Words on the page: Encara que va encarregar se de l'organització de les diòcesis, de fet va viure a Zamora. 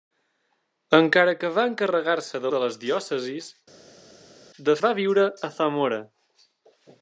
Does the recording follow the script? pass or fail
fail